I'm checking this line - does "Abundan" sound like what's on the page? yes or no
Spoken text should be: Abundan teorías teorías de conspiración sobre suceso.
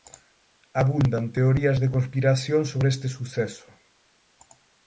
yes